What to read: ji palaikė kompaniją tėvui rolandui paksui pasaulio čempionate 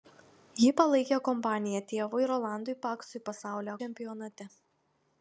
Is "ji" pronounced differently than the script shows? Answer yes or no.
no